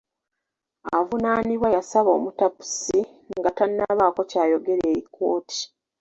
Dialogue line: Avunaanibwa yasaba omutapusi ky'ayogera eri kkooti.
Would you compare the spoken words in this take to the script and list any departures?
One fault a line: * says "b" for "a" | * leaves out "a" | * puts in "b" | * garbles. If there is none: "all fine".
* puts in "nga tannabaako"